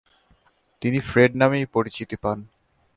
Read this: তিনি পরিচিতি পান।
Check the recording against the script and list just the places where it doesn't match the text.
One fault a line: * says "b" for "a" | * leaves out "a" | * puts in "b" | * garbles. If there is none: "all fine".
* puts in "ফ্রেড নামেই"